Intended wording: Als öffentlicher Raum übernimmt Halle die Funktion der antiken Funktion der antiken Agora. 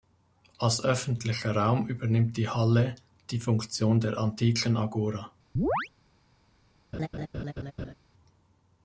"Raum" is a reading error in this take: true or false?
false